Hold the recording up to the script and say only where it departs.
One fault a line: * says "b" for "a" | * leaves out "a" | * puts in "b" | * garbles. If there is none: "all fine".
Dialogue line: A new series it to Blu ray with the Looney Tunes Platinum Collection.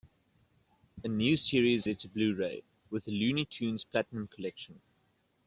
all fine